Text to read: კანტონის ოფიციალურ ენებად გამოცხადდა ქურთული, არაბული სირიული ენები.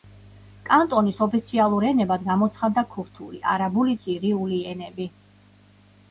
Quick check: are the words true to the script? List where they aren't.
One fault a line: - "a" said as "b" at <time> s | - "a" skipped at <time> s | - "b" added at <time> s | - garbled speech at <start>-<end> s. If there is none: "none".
none